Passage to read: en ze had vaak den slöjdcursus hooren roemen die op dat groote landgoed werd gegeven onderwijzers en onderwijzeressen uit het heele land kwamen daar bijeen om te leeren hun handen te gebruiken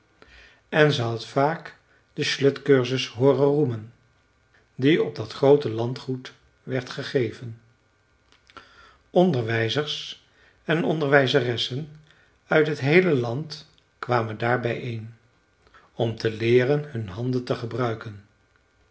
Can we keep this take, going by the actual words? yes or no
yes